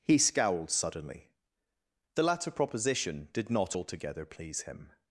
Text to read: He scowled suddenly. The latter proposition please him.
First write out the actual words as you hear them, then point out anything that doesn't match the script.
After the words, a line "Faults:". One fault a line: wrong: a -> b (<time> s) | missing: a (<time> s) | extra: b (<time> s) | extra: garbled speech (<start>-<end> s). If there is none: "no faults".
He scowled suddenly. The latter proposition did not altogether please him.
Faults:
extra: did not altogether (3.3 s)